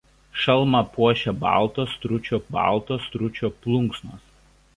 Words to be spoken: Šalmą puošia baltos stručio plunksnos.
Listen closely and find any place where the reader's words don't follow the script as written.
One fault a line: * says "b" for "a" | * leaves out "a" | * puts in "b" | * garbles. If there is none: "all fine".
* puts in "baltos stručio"